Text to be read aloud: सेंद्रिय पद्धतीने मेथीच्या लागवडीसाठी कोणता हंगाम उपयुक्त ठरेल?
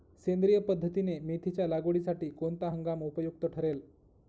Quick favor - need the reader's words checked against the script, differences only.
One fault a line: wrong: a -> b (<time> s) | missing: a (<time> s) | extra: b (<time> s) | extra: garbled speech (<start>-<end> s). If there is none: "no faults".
no faults